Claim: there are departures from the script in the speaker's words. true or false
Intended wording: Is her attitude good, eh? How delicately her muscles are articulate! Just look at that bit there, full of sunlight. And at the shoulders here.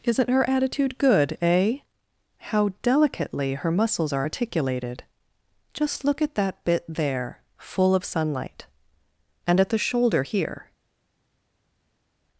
true